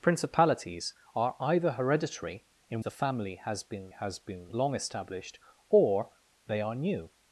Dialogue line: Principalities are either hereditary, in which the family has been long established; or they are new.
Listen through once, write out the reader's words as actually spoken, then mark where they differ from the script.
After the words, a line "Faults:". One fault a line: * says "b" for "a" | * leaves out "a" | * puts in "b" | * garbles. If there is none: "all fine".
Principalities are either hereditary, in the family has been has been long established; or they are new.
Faults:
* leaves out "which"
* puts in "has been"